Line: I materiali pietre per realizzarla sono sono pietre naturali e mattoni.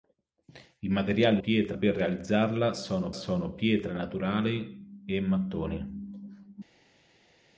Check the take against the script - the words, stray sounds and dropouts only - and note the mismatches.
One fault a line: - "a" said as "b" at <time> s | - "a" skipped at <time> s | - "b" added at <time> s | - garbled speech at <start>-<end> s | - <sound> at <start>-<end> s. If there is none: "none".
none